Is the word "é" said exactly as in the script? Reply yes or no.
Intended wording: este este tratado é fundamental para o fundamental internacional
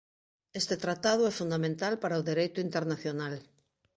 yes